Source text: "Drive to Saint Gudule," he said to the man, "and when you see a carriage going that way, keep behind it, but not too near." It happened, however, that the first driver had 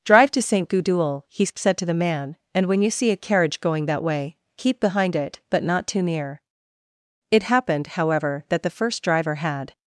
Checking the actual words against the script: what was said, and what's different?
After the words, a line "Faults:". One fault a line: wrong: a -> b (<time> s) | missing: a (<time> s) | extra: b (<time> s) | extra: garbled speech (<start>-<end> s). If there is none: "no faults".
"Drive to Saint Gudule," he said to the man, "and when you see a carriage going that way, keep behind it, but not too near." It happened, however, that the first driver had
Faults:
no faults